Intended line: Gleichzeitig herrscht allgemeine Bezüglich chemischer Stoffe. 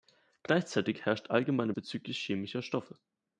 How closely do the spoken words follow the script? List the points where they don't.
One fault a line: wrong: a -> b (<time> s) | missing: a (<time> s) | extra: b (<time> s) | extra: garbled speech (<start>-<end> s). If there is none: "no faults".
no faults